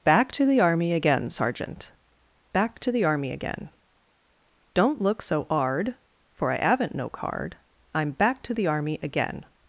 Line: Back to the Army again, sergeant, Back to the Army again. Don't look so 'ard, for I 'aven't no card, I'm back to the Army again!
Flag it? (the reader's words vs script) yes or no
no